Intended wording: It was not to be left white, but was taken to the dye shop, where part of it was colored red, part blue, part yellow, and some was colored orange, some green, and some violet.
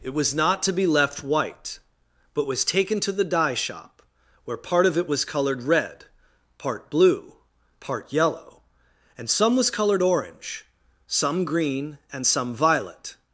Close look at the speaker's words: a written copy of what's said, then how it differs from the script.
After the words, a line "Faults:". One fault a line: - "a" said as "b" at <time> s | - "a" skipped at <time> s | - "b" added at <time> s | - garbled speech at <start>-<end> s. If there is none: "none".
It was not to be left white, but was taken to the dye shop, where part of it was colored red, part blue, part yellow, and some was colored orange, some green, and some violet.
Faults:
none